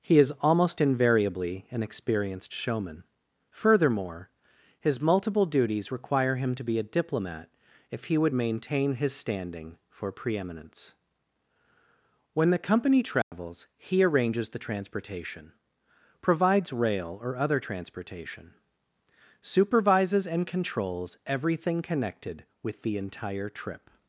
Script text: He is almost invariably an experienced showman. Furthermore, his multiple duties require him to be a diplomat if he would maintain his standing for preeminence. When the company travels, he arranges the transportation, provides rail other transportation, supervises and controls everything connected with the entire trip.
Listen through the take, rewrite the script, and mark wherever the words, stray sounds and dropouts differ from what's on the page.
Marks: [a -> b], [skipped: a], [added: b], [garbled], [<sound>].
He is almost invariably an experienced showman. Furthermore, his multiple duties require him to be a diplomat if he would maintain his standing for preeminence. When the company travels, [dropout] he arranges the transportation, provides rail [added: or] other transportation, supervises and controls everything connected with the entire trip.